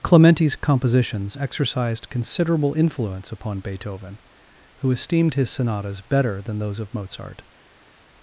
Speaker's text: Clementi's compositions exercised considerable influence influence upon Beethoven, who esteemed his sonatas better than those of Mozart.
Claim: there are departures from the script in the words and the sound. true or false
true